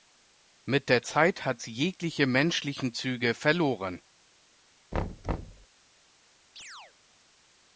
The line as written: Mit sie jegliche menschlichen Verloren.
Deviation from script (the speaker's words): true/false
true